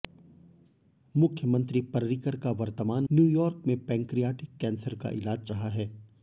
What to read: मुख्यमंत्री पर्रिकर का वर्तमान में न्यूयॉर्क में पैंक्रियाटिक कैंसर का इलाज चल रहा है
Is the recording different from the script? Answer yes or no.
yes